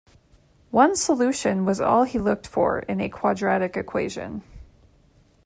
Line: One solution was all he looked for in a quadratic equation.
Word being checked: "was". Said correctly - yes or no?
yes